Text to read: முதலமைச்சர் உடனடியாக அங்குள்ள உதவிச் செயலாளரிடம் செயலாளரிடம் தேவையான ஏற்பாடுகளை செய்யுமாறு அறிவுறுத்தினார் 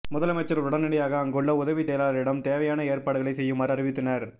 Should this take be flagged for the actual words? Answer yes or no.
yes